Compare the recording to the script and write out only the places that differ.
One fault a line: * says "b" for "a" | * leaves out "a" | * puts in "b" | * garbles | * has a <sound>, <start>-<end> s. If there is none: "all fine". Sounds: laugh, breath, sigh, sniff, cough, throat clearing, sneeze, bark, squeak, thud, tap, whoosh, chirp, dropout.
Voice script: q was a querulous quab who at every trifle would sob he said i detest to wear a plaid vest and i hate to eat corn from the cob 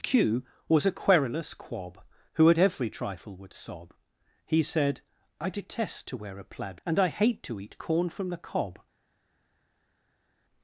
* leaves out "vest"